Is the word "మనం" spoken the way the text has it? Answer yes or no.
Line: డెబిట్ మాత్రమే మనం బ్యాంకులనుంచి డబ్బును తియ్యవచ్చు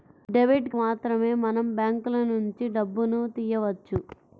yes